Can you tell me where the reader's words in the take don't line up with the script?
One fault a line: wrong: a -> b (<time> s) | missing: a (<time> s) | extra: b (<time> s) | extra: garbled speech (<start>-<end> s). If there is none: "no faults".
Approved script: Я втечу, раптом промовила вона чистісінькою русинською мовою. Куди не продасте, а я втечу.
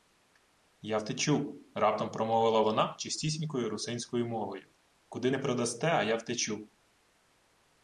no faults